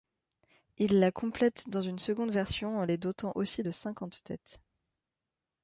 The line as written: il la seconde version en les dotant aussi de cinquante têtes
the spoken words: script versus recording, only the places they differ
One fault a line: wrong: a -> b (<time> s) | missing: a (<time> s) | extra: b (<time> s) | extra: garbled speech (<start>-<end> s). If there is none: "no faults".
extra: complète dans une (1.1 s)